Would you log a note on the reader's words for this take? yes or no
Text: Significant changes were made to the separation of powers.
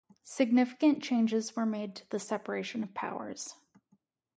no